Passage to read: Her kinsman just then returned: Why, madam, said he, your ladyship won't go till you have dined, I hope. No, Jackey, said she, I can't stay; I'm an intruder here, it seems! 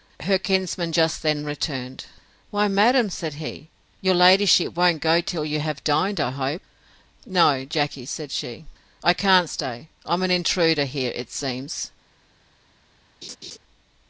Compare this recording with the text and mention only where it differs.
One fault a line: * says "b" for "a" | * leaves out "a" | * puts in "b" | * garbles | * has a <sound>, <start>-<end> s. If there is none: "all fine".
* has a laugh, 13.2-13.6 s